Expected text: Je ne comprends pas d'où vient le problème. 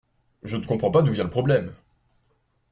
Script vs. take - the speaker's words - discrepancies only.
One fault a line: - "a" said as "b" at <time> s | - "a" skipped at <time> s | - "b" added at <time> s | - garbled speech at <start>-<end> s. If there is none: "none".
none